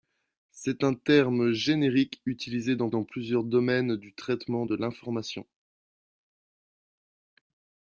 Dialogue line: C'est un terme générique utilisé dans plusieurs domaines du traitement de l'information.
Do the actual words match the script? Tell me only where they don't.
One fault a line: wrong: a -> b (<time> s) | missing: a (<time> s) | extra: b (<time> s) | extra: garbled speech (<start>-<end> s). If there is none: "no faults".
extra: dans (2.9 s)